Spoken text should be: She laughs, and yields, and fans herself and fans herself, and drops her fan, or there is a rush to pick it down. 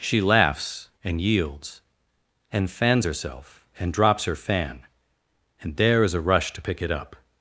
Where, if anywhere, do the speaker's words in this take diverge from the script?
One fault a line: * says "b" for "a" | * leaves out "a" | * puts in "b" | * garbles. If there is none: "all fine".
* leaves out "fans herself and"
* says "and" for "or"
* says "up" for "down"